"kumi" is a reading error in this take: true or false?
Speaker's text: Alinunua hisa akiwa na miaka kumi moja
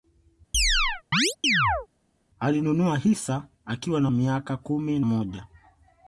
false